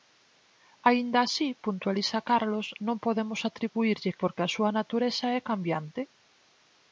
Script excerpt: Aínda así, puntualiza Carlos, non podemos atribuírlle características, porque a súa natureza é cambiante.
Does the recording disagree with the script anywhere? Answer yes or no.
yes